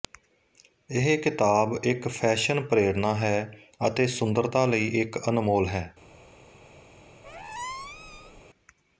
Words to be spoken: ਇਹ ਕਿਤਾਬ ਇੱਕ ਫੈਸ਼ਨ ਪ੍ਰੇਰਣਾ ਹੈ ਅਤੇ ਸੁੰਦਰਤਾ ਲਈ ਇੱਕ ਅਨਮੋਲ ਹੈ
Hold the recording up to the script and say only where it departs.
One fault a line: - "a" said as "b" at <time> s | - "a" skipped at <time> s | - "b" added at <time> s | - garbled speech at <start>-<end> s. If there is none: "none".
none